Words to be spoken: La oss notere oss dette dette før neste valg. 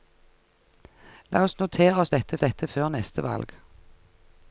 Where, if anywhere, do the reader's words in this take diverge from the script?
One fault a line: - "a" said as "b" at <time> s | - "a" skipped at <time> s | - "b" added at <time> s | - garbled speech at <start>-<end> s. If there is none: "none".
none